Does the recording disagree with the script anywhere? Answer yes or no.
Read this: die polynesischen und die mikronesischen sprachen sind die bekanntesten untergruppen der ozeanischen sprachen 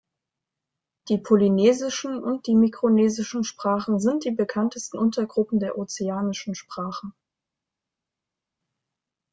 no